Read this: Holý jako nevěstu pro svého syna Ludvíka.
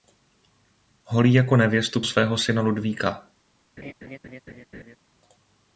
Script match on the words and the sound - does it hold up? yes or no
no